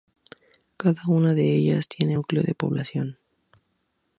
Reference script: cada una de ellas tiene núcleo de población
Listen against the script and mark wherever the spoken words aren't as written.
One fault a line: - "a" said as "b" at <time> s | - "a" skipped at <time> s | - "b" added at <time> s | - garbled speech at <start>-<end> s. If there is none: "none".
none